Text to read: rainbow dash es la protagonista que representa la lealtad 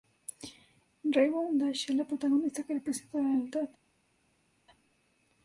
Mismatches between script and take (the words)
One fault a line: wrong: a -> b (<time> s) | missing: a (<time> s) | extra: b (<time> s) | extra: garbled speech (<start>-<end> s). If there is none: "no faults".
no faults